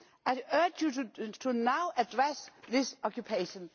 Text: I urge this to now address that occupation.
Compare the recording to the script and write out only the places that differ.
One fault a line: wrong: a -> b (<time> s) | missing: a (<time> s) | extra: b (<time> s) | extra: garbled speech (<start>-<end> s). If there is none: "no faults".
wrong: this -> you (0.8 s)
wrong: that -> this (2.7 s)